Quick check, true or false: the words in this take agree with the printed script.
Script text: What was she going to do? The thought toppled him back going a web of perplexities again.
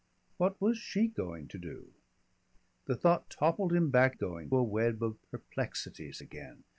true